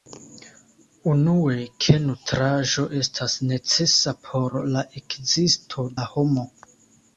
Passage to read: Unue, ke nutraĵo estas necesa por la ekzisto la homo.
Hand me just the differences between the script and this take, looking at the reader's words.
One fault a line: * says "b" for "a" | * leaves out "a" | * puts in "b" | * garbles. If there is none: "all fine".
all fine